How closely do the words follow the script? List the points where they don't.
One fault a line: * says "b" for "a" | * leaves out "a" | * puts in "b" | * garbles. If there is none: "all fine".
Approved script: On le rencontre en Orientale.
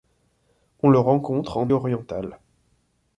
all fine